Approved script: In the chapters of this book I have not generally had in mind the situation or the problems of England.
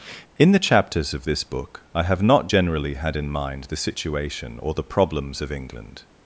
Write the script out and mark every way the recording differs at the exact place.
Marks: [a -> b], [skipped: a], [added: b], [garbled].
In the chapters of this book I have not generally had in mind the situation or the problems of England.